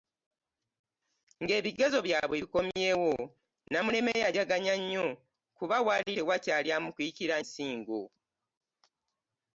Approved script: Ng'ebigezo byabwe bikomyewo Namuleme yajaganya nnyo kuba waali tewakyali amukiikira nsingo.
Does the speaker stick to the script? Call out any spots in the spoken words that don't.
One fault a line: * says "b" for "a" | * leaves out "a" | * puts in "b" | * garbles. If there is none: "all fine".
all fine